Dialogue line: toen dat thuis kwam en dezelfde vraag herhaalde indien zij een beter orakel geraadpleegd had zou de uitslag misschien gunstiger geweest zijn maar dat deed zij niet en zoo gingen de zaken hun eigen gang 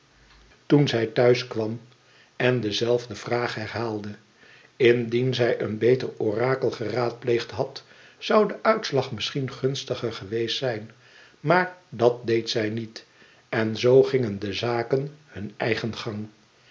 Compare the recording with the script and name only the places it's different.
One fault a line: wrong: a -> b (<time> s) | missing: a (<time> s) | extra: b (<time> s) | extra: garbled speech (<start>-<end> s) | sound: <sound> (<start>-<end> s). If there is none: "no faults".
wrong: dat -> zij (0.9 s)